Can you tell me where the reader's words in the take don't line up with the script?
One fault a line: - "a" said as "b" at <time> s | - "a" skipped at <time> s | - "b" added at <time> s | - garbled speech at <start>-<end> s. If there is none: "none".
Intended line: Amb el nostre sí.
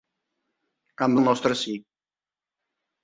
none